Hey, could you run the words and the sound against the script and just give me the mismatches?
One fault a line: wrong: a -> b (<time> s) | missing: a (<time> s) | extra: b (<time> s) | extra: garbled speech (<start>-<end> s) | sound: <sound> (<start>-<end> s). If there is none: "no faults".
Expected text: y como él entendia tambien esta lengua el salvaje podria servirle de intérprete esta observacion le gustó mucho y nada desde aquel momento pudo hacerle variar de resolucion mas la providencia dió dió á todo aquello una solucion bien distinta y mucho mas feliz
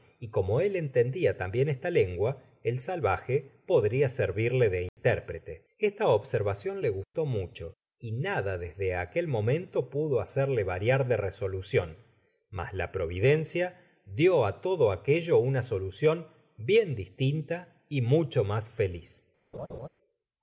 sound: dropout (4.9-5.0 s)
missing: dió (14.4 s)
sound: laugh (19.5-19.9 s)